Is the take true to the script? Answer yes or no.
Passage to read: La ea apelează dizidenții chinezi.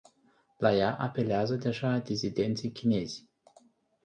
no